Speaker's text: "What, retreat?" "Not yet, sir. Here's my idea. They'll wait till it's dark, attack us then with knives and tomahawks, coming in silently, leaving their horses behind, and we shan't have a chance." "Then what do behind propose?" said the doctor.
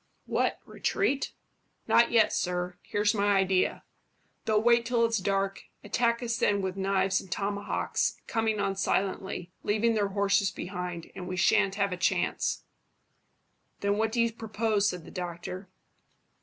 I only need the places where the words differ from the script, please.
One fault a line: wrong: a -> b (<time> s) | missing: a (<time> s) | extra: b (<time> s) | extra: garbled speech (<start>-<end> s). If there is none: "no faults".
wrong: in -> on (8.6 s)
wrong: behind -> you (14.2 s)